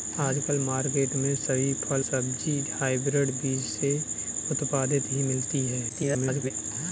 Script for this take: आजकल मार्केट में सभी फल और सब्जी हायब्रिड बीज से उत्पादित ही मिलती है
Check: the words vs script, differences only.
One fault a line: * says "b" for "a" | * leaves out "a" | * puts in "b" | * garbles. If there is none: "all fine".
* leaves out "और"
* garbles